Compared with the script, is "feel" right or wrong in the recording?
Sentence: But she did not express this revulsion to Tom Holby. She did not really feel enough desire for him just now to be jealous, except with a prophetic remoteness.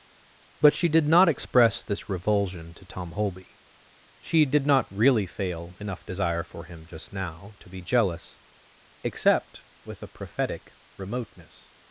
wrong